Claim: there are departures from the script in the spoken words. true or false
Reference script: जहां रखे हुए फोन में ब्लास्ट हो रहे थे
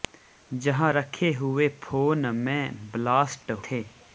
true